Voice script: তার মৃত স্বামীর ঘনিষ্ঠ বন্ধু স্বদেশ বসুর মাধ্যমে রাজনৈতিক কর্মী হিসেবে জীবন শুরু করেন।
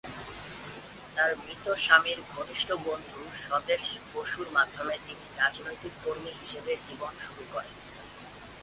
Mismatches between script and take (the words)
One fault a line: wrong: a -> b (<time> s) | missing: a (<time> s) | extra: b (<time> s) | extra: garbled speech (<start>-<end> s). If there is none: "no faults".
extra: তিনি (5.1 s)